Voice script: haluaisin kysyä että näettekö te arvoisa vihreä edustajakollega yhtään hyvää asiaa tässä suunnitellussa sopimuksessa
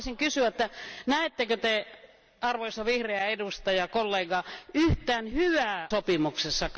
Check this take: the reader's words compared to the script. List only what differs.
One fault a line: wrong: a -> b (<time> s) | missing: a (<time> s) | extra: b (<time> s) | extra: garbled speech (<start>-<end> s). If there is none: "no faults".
missing: asiaa tässä suunnitellussa (5.9 s)